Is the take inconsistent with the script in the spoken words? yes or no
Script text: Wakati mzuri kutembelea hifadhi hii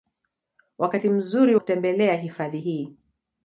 no